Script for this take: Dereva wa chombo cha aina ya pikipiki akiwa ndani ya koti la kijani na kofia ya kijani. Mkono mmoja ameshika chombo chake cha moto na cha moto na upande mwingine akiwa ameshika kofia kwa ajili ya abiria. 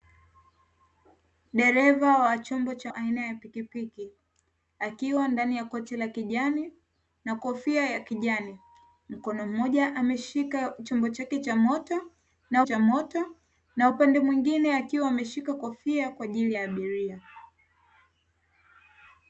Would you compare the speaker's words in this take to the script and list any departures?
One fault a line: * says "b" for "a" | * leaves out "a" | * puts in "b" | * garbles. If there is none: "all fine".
all fine